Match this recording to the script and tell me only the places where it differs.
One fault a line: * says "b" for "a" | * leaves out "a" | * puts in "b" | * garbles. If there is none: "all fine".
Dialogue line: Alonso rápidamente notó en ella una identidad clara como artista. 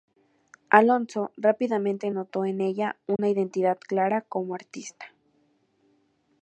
all fine